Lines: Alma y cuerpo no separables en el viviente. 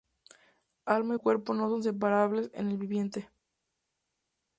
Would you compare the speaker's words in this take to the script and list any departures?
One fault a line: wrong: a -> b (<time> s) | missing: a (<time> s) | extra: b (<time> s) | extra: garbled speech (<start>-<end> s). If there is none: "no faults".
extra: son (1.7 s)